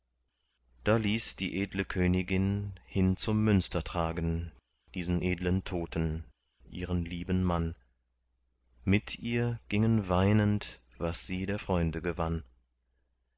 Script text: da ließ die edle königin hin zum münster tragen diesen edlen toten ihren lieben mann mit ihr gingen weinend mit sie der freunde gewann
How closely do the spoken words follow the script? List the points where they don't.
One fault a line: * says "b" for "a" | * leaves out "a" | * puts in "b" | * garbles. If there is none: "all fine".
* says "was" for "mit"